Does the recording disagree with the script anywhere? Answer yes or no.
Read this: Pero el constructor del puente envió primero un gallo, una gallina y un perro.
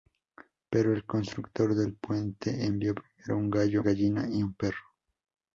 yes